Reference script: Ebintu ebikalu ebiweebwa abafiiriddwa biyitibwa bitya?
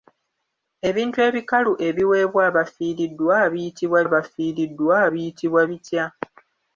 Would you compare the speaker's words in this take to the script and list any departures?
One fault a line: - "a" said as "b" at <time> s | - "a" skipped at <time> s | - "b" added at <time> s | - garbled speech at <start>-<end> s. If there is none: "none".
- "abafiiriddwa biyitibwa" added at 4.1 s